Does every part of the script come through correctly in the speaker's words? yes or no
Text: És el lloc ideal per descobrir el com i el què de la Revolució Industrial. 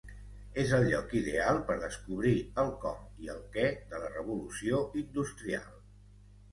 yes